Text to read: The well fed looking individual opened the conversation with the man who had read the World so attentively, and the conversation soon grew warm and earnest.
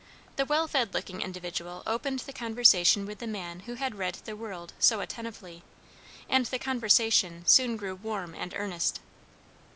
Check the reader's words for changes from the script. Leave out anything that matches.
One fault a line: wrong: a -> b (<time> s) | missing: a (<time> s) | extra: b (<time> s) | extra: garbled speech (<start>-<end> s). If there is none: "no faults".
no faults